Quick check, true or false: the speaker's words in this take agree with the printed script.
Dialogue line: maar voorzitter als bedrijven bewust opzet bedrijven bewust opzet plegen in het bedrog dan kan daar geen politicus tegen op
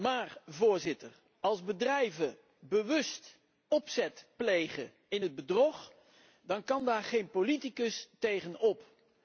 false